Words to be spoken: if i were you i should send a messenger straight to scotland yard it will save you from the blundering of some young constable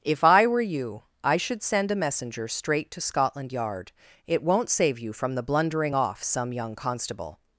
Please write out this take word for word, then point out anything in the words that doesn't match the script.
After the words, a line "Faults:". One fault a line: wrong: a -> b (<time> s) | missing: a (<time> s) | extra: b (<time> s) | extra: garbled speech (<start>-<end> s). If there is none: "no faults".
if i were you i should send a messenger straight to scotland yard it won't save you from the blundering off some young constable
Faults:
wrong: will -> won't (4.4 s)
wrong: of -> off (5.9 s)